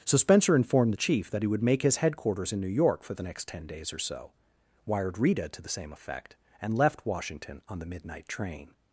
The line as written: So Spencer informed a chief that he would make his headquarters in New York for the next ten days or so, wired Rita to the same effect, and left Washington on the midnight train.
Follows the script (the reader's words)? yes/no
no